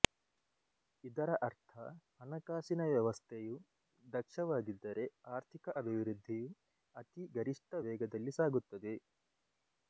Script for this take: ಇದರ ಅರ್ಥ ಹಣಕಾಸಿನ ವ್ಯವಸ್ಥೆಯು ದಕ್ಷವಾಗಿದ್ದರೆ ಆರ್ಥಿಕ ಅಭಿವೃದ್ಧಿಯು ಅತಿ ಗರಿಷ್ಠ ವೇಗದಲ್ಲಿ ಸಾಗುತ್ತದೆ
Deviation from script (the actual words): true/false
false